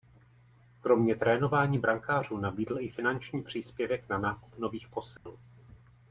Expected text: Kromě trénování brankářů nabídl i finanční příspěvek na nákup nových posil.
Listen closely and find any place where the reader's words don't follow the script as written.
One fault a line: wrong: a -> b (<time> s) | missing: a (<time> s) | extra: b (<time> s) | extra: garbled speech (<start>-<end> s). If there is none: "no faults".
no faults